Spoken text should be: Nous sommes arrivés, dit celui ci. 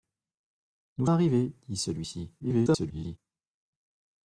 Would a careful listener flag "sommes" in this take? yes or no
yes